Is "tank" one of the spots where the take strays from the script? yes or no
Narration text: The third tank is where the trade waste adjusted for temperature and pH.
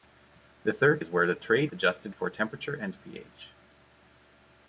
yes